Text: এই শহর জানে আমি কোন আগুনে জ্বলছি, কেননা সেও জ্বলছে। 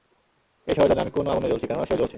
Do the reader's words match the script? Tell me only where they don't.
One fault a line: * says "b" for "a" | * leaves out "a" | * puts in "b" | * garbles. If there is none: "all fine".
all fine